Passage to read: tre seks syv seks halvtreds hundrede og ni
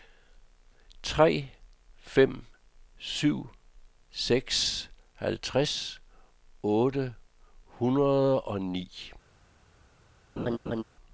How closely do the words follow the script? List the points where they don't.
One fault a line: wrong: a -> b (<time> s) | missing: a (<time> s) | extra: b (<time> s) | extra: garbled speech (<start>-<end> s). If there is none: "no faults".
wrong: seks -> fem (2.0 s)
extra: otte (6.6 s)